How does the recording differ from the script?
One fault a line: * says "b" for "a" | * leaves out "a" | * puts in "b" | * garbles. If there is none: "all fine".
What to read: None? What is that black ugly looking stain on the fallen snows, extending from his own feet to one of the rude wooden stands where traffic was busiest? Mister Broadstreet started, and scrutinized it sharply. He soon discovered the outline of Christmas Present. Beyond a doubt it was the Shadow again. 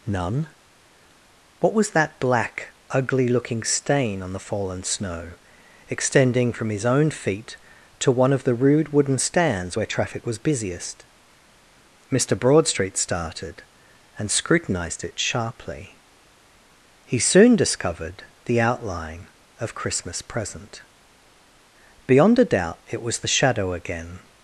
* says "was" for "is"
* says "snow" for "snows"